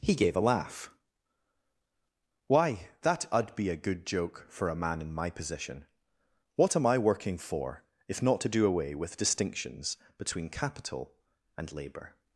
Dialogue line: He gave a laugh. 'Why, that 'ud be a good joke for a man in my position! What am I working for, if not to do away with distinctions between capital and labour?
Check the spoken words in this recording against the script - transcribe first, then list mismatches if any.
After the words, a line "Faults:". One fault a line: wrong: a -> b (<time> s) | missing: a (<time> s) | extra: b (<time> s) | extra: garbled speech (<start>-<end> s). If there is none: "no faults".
He gave a laugh. 'Why, that 'ud be a good joke for a man in my position! What am I working for, if not to do away with distinctions between capital and labour?
Faults:
no faults